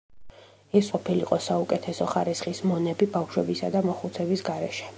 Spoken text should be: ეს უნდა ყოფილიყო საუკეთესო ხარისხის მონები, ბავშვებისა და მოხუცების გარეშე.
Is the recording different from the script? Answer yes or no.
yes